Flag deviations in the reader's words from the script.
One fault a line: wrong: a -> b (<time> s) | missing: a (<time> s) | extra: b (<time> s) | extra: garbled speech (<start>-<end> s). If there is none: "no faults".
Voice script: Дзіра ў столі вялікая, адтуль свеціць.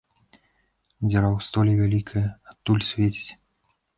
no faults